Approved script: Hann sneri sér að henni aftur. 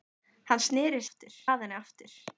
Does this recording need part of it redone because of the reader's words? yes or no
yes